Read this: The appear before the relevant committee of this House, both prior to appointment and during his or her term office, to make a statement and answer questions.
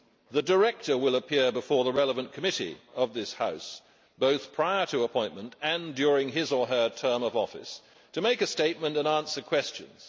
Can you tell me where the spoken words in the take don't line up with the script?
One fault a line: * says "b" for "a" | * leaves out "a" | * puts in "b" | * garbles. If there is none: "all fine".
* puts in "director will"
* puts in "of"